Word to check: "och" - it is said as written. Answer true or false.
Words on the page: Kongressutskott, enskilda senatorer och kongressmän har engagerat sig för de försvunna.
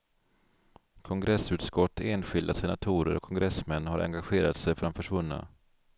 true